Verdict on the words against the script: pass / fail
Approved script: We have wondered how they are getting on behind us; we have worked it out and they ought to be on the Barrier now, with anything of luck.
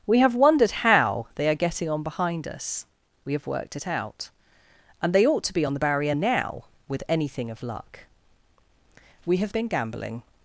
fail